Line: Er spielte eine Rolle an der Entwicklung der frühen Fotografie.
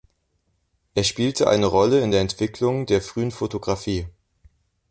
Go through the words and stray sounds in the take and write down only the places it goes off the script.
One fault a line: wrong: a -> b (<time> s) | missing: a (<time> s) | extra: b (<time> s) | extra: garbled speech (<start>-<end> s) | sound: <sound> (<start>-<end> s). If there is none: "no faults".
wrong: an -> in (2.0 s)